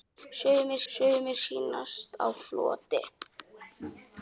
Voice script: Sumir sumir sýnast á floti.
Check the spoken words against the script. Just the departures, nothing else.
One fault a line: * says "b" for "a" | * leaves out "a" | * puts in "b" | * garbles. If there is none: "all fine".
all fine